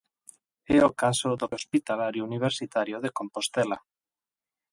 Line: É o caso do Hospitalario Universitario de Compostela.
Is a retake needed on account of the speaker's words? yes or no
no